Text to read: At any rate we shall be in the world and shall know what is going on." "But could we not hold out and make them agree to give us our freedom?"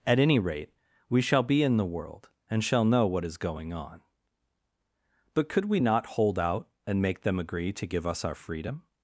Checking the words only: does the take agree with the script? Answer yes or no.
yes